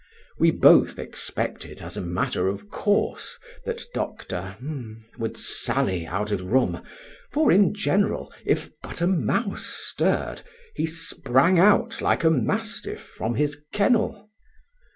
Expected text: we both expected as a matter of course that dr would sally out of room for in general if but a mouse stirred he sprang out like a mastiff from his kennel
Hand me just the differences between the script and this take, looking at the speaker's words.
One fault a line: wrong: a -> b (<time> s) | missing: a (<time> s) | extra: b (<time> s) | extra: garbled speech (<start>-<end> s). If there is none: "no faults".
no faults